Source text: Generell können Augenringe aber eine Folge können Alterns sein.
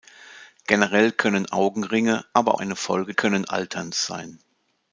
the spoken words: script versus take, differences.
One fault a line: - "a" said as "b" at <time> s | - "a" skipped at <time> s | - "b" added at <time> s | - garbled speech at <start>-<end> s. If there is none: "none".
none